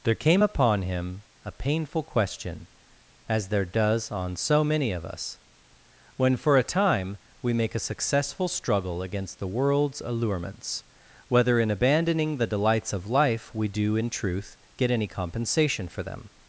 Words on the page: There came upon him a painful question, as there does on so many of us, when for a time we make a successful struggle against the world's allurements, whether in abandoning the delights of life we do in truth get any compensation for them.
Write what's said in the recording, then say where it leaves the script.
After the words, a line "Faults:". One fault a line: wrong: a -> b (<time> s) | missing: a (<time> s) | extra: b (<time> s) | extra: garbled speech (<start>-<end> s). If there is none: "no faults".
There came upon him a painful question, as there does on so many of us, when for a time we make a successful struggle against the world's allurements, whether in abandoning the delights of life we do in truth get any compensation for them.
Faults:
no faults